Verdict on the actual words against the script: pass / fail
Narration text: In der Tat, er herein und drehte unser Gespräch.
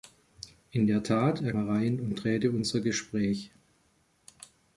pass